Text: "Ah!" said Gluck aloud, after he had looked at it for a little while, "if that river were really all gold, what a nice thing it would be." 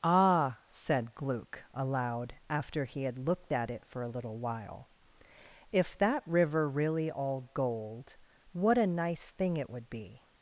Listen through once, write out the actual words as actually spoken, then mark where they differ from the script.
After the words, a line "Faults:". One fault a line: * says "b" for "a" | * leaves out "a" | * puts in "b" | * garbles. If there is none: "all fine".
"Ah!" said Gluck aloud, after he had looked at it for a little while, "if that river really all gold, what a nice thing it would be."
Faults:
* leaves out "were"